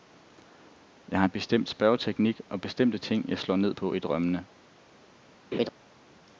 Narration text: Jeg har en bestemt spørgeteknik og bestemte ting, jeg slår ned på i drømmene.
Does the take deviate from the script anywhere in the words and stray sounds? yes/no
yes